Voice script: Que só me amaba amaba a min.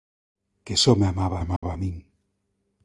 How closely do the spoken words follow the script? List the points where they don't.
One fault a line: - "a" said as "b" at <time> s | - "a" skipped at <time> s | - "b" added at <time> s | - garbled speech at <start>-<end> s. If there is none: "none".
none